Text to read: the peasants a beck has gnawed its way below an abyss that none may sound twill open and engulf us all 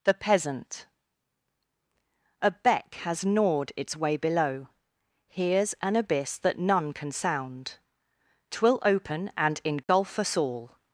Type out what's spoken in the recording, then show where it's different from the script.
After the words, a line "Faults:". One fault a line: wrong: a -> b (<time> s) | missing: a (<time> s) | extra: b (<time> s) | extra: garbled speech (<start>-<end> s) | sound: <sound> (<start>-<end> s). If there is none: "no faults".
the peasant a beck has gnawed its way below here's an abyss that none can sound twill open and engulf us all
Faults:
wrong: peasants -> peasant (0.1 s)
extra: here's (5.3 s)
wrong: may -> can (6.9 s)
sound: dropout (9.8-9.9 s)